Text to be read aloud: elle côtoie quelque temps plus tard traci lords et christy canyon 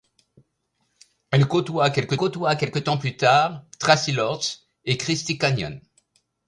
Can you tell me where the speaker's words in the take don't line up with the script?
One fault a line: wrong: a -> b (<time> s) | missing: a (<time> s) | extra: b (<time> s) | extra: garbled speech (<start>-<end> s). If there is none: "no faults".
extra: côtoie quelque (2.2 s)